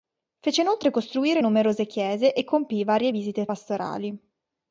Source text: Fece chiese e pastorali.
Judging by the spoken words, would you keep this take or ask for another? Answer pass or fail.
fail